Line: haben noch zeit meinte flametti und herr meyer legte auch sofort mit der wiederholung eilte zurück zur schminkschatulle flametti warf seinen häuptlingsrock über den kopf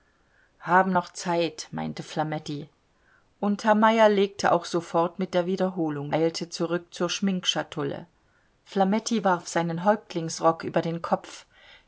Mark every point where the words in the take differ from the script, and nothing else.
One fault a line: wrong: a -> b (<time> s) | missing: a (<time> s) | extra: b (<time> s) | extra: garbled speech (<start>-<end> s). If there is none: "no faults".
no faults